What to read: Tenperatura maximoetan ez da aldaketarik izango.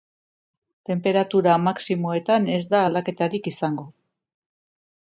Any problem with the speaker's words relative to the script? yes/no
no